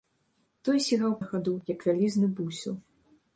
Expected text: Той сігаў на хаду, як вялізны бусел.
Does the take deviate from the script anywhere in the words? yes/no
no